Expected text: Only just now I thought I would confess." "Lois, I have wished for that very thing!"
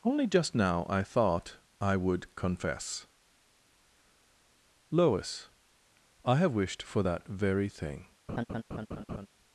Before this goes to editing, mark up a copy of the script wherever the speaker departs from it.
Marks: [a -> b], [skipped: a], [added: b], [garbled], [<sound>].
Only just now I thought I would confess." "Lois, I have wished for that very thing!" [laugh]